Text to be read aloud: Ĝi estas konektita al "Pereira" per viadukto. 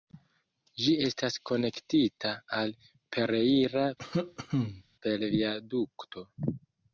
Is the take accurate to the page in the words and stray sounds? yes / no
no